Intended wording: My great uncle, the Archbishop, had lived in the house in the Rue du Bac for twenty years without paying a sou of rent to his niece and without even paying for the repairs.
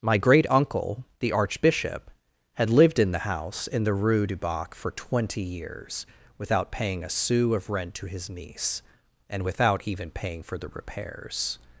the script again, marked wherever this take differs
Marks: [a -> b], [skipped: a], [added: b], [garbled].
My great uncle, the Archbishop, had lived in the house in the Rue du Bac for twenty years without paying a sou of rent to his niece and without even paying for the repairs.